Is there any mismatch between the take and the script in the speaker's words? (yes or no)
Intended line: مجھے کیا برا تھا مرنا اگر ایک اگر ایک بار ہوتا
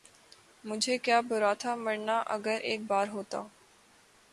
yes